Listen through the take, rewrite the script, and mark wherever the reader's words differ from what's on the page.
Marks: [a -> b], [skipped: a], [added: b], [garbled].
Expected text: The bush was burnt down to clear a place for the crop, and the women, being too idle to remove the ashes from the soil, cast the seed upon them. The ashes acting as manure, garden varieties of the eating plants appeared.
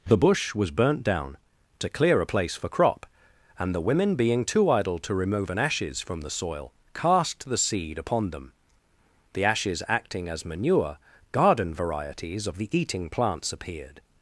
The bush was burnt down to clear a place for [skipped: the] crop, and the women, being too idle to remove [the -> an] ashes from the soil, cast the seed upon them. The ashes acting as manure, garden varieties of the eating plants appeared.